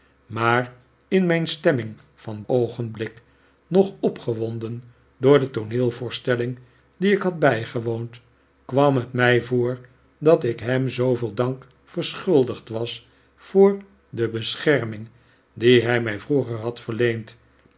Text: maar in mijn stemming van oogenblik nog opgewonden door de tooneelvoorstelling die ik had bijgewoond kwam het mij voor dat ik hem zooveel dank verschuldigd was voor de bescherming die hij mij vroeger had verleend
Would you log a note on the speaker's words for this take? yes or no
no